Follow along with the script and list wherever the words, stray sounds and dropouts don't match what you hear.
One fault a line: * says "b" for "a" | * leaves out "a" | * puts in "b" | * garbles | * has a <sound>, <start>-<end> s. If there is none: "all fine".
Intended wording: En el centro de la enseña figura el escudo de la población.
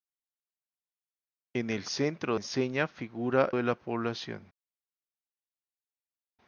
* leaves out "de la"
* leaves out "el escudo"